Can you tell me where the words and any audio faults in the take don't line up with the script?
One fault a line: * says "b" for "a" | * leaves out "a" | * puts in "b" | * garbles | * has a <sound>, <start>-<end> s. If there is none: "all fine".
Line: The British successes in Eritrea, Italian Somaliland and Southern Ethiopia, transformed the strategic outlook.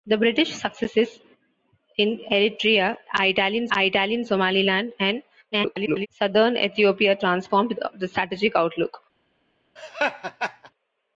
* puts in "Italian"
* garbles
* has a laugh, 9.8-10.7 s